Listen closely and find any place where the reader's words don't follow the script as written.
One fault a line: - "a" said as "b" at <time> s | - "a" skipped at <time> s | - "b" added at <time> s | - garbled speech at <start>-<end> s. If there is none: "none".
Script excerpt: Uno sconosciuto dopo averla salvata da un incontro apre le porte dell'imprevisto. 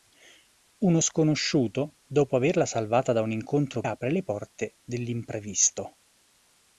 none